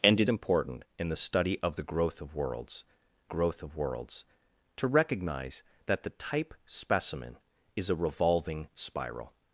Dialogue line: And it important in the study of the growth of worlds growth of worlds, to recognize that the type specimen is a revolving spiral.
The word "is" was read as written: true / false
true